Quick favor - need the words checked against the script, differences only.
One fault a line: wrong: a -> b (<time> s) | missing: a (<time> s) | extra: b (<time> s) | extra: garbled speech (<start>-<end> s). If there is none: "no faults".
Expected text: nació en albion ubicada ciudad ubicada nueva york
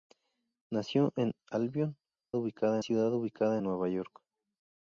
no faults